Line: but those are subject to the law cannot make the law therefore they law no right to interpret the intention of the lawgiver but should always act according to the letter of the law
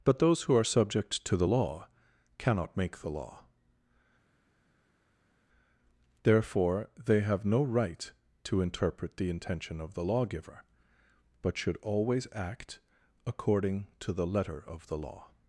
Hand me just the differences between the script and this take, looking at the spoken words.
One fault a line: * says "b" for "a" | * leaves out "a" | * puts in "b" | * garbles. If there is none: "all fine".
* puts in "who"
* says "have" for "law"